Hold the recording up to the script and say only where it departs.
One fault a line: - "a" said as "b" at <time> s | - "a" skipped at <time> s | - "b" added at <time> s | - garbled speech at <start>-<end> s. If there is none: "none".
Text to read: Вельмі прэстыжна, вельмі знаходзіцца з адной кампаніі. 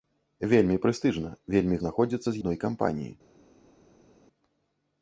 none